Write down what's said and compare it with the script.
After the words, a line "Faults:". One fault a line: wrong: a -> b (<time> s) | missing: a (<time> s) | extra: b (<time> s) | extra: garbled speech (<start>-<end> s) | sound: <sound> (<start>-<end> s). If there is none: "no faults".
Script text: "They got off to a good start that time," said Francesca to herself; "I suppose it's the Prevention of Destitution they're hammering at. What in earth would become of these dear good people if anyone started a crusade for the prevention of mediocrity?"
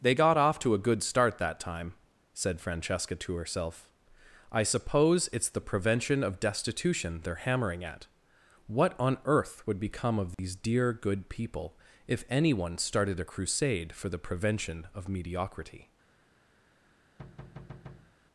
"They got off to a good start that time," said Francesca to herself; "I suppose it's the Prevention of Destitution they're hammering at. What on earth would become of these dear good people if anyone started a crusade for the prevention of mediocrity?"
Faults:
wrong: in -> on (9.0 s)
sound: dropout (10.3-10.4 s)
sound: thud (17.2-18.1 s)